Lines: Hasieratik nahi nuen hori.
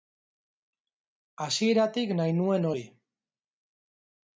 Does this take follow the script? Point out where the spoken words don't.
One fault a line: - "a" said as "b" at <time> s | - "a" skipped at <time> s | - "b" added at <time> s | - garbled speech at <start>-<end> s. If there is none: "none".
none